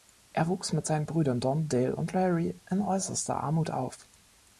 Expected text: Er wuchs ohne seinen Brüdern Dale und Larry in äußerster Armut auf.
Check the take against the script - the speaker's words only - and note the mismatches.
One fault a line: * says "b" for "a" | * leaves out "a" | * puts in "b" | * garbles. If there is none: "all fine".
* says "mit" for "ohne"
* puts in "Don"